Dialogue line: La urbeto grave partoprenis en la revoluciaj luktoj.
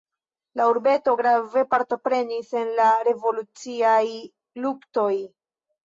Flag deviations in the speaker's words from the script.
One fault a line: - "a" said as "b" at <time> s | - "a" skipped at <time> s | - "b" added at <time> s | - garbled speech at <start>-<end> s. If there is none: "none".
none